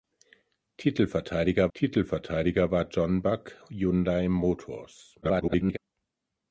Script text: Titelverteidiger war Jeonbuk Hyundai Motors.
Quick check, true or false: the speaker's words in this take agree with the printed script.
false